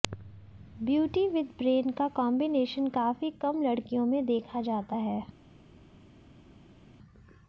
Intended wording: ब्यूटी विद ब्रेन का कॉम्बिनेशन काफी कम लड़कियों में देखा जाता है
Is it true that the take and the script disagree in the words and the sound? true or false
false